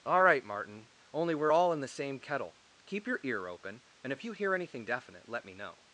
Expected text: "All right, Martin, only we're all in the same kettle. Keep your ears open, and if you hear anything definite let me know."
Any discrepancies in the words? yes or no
yes